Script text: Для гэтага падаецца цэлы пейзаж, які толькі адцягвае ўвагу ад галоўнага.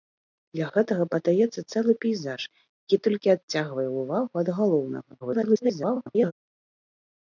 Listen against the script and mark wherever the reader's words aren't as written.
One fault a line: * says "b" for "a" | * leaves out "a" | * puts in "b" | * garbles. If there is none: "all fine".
* garbles